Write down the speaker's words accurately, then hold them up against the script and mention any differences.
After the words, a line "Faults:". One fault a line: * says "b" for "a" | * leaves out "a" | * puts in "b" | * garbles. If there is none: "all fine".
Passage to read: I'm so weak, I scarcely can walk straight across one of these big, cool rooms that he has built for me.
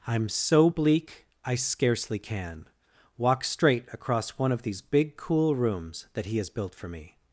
I'm so bleak, I scarcely can walk straight across one of these big, cool rooms that he has built for me.
Faults:
* says "bleak" for "weak"